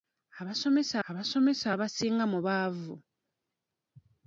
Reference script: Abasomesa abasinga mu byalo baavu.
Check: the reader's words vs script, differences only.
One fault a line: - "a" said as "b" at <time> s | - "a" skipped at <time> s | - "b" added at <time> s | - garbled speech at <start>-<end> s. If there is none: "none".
- "abasomesa" added at 1.1 s
- "byalo" skipped at 2.4 s